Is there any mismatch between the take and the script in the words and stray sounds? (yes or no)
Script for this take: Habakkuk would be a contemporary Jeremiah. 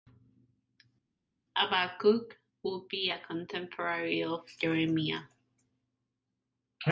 yes